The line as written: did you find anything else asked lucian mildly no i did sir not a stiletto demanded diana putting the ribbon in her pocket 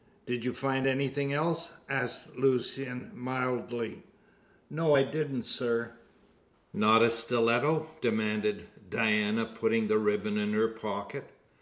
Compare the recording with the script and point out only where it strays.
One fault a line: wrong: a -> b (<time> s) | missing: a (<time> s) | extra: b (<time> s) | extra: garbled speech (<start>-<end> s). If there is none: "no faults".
wrong: did -> didn't (5.0 s)